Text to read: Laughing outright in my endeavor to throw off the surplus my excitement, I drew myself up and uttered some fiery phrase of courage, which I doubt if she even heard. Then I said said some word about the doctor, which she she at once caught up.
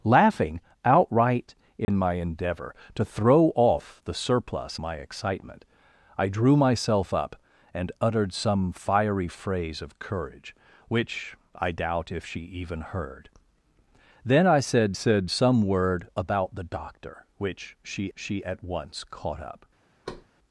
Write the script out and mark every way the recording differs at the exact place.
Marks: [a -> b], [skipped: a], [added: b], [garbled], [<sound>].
Laughing outright in [dropout] my endeavor to throw off the surplus my excitement, I drew myself up and uttered some fiery phrase of courage, which I doubt if she even heard. Then I said said some word about the doctor, which she she at once caught up. [thud]